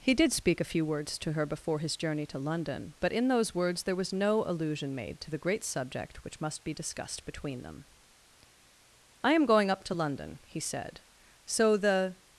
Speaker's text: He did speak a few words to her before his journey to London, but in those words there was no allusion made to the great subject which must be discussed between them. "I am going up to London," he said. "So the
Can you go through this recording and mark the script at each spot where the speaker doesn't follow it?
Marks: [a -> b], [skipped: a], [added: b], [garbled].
He did speak a few words to her before his journey to London, but in those words there was no allusion made to the great subject which must be discussed between them. "I am going up to London," he said. "So the